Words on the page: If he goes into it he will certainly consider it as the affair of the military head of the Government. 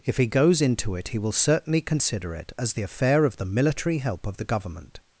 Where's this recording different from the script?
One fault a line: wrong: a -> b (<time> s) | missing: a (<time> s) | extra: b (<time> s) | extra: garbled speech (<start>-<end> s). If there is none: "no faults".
wrong: head -> help (4.0 s)